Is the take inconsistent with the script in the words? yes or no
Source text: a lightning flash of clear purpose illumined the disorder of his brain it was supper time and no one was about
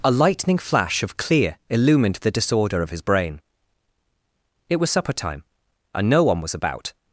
yes